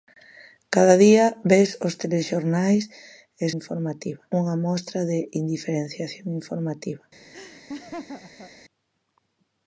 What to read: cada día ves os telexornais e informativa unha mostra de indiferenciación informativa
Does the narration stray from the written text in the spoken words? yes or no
no